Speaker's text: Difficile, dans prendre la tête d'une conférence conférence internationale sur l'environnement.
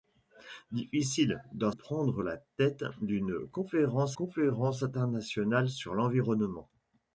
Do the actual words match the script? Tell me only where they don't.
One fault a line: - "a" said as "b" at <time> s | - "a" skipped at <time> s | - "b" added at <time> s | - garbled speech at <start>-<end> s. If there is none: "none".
none